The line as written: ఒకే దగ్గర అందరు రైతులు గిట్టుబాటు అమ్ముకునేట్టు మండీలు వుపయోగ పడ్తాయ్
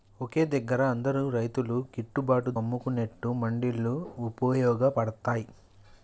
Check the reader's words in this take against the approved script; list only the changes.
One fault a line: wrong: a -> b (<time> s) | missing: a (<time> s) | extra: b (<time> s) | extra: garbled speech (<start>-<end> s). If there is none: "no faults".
no faults